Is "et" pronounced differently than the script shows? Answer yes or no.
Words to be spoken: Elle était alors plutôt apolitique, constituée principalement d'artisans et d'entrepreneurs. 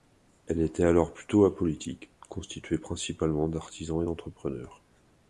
no